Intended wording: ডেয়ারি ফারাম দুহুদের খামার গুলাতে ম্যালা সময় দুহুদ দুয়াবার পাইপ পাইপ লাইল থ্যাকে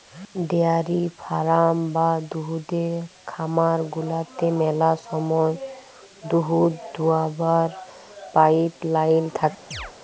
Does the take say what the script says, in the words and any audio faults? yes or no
no